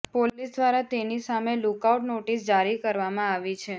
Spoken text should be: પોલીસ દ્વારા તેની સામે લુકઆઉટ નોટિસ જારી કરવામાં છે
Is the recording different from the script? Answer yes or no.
yes